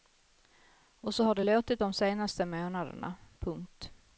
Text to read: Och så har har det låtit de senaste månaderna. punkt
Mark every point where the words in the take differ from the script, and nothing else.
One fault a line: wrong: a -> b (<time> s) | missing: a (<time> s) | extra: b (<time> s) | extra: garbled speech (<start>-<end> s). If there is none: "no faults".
missing: har (1.3 s)